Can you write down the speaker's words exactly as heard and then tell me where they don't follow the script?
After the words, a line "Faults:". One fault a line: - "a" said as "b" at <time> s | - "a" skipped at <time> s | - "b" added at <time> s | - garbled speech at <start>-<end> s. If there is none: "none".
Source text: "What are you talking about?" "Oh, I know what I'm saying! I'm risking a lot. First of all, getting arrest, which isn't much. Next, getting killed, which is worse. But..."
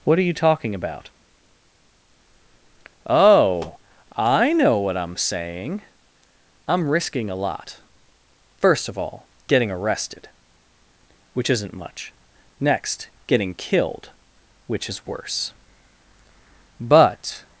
"What are you talking about?" "Oh, I know what I'm saying! I'm risking a lot. First of all, getting arrested, which isn't much. Next, getting killed, which is worse. But..."
Faults:
- "arrest" said as "arrested" at 9.7 s